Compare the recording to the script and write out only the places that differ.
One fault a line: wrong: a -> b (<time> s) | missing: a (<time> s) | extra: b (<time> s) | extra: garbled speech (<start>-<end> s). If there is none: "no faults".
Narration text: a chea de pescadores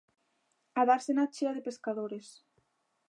extra: dársena (0.9 s)